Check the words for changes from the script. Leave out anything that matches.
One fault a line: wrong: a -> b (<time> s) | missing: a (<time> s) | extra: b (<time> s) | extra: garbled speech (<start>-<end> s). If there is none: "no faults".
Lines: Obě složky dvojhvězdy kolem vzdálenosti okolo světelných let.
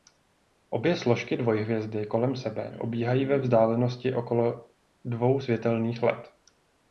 extra: sebe obíhají ve (2.4 s)
extra: dvou (5.0 s)